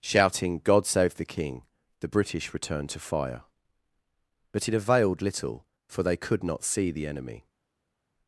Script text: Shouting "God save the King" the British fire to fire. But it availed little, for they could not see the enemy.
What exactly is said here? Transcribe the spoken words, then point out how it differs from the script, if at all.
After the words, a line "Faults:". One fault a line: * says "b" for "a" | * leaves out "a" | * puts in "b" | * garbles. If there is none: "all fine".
Shouting "God save the King" the British returned to fire. But it availed little, for they could not see the enemy.
Faults:
* says "returned" for "fire"